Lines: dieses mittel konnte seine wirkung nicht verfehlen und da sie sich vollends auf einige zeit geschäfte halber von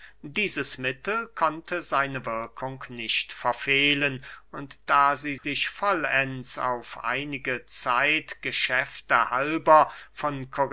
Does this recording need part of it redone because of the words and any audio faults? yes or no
yes